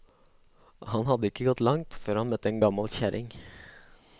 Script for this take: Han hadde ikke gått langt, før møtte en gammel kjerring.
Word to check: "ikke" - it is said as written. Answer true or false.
true